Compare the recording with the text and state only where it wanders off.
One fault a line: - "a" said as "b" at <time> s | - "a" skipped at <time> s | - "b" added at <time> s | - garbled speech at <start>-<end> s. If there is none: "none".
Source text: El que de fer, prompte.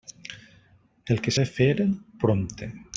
none